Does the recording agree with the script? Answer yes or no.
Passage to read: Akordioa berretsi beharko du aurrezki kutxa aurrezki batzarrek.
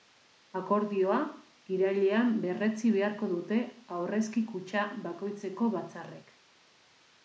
no